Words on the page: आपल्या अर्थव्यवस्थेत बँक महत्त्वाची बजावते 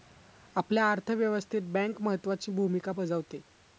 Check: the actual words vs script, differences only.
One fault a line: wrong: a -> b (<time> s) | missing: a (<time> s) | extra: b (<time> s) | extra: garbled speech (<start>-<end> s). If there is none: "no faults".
extra: भूमिका (2.5 s)